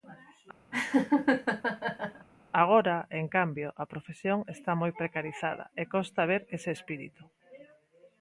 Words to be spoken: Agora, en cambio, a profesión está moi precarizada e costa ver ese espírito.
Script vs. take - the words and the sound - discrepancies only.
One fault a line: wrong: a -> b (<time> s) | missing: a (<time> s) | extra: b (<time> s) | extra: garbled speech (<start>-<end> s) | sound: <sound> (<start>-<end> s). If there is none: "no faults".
sound: laugh (0.7-2.3 s)